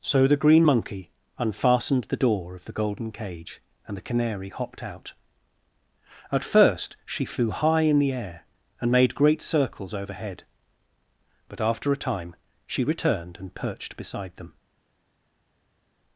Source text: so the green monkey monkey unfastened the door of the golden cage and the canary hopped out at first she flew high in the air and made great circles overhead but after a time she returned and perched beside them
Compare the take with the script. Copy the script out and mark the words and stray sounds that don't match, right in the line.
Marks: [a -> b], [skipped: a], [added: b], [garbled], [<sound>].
so the green monkey [skipped: monkey] unfastened the door of the golden cage and the canary hopped out at first she flew high in the air and made great circles overhead but after a time she returned and perched beside them